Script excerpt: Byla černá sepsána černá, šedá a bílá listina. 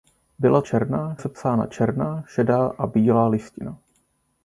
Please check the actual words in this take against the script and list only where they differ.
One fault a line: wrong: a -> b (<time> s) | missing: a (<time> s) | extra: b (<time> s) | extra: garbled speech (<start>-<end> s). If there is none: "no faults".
no faults